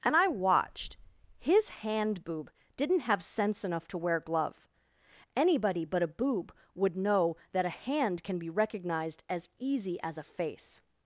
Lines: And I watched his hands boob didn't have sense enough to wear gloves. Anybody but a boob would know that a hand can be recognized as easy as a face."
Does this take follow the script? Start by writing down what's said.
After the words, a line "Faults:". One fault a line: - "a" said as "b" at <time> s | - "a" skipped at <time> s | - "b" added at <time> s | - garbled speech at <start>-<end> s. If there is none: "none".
And I watched his hand boob didn't have sense enough to wear glove. Anybody but a boob would know that a hand can be recognized as easy as a face."
Faults:
- "hands" said as "hand" at 1.7 s
- "gloves" said as "glove" at 4.2 s